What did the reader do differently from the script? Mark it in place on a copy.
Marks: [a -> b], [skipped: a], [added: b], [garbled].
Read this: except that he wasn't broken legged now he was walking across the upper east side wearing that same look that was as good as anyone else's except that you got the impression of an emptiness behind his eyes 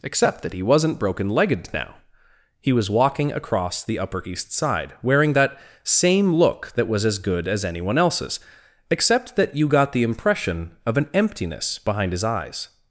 except that he wasn't broken legged now he was walking across the upper east side wearing that same look that was as good as anyone else's except that you got the impression of an emptiness behind his eyes